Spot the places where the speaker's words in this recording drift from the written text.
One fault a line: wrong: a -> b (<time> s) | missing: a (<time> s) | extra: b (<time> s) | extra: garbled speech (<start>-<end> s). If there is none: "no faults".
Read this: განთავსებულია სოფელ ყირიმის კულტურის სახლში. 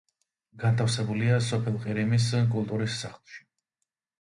no faults